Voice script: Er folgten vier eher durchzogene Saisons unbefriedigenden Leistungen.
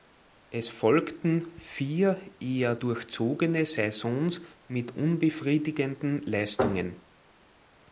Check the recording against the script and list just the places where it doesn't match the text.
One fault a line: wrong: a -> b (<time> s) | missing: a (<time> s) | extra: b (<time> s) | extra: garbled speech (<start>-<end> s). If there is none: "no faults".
wrong: Er -> Es (0.5 s)
extra: mit (4.7 s)